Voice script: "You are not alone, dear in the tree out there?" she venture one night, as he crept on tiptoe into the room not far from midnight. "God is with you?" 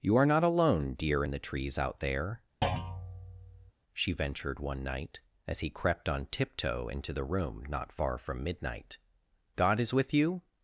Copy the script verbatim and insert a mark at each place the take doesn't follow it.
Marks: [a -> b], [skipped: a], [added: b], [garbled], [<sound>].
"You are not alone, dear in the [tree -> trees] out there?" [thud] she [venture -> ventured] one night, as he crept on tiptoe into the room not far from midnight. "God is with you?"